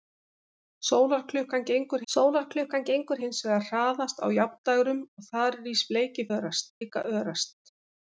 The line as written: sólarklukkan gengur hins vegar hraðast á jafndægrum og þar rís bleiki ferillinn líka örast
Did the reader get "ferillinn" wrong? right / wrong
wrong